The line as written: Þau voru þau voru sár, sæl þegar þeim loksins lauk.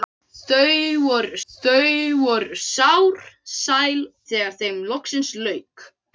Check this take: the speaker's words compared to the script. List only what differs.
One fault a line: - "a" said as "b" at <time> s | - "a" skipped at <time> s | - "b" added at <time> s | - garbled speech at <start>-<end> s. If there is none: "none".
none